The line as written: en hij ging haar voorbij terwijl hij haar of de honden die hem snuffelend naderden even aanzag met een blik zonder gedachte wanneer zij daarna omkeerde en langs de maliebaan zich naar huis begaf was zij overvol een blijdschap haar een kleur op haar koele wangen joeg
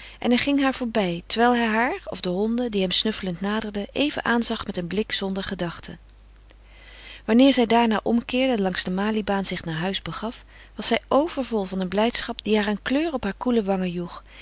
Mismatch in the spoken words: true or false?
true